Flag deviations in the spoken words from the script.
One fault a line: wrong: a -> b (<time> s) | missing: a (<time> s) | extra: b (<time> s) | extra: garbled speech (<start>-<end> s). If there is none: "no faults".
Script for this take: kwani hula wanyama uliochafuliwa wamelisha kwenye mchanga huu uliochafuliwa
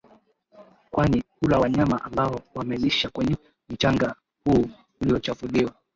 wrong: uliochafuliwa -> ambao (2.0 s)